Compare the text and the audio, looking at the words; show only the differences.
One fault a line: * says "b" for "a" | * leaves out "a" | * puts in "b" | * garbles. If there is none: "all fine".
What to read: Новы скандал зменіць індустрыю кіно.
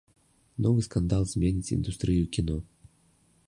all fine